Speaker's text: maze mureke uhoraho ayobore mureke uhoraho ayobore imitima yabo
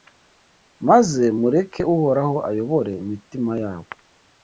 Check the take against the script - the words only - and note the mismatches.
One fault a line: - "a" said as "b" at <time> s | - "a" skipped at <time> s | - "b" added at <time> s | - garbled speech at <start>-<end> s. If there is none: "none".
- "mureke uhoraho ayobore" skipped at 2.9 s